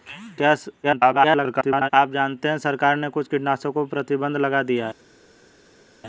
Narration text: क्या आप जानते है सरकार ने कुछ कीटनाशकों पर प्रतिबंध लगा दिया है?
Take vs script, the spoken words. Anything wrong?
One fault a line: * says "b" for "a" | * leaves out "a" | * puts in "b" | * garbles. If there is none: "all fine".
* garbles